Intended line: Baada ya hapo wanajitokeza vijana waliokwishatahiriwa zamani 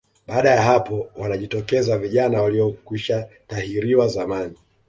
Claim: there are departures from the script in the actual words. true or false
false